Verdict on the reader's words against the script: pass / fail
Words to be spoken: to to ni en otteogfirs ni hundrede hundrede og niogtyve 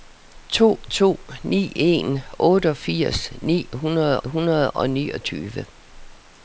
pass